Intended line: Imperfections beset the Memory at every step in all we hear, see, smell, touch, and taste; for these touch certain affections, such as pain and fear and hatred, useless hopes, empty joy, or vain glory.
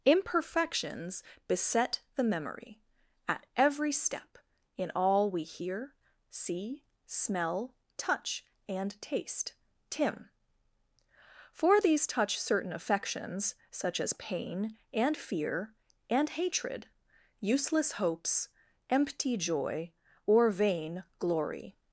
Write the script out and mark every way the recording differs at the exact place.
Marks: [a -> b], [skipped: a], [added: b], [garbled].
Imperfections beset the Memory at every step in all we hear, see, smell, touch, and taste; [added: tim] for these touch certain affections, such as pain and fear and hatred, useless hopes, empty joy, or vain glory.